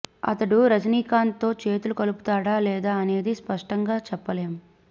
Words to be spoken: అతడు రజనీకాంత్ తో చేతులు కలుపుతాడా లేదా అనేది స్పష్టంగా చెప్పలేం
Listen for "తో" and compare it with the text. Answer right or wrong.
right